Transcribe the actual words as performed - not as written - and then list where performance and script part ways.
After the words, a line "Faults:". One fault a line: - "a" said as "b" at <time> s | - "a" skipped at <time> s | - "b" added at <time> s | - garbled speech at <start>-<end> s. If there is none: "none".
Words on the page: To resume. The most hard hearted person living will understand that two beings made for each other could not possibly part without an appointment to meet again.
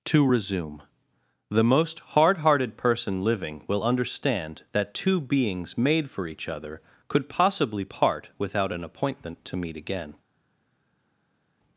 To resume. The most hard hearted person living will understand that two beings made for each other could possibly part without an appointment to meet again.
Faults:
- "not" skipped at 7.3 s